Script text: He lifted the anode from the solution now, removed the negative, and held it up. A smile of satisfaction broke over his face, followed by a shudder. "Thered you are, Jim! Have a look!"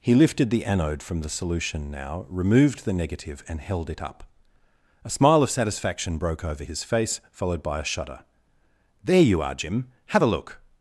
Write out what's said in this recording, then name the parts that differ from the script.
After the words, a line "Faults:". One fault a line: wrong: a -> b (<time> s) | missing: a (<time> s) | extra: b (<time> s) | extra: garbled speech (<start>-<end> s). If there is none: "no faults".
He lifted the anode from the solution now, removed the negative, and held it up. A smile of satisfaction broke over his face, followed by a shudder. "There you are, Jim! Have a look!"
Faults:
wrong: Thered -> There (9.0 s)